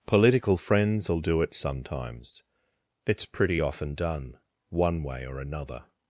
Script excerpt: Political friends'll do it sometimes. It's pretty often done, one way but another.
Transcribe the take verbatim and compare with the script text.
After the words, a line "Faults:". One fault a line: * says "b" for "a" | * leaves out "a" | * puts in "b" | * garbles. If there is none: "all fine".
Political friends'll do it sometimes. It's pretty often done, one way or another.
Faults:
* says "or" for "but"